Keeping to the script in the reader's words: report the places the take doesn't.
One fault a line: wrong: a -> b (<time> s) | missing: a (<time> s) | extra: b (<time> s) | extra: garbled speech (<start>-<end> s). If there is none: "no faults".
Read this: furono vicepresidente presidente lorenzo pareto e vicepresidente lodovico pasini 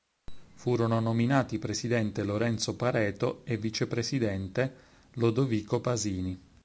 wrong: vicepresidente -> nominati (1.0 s)